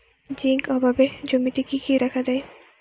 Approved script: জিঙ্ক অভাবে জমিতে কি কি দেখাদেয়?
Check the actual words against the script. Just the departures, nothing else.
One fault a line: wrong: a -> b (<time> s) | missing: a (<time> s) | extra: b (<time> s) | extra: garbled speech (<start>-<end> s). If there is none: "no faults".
no faults